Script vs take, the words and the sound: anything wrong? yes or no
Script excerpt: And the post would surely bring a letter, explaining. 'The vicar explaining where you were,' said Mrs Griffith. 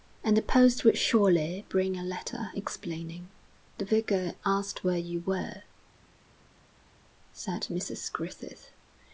yes